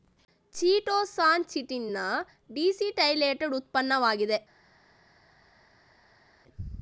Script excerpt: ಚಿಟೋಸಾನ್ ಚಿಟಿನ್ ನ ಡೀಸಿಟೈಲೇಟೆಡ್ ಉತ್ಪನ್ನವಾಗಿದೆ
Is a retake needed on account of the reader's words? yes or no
no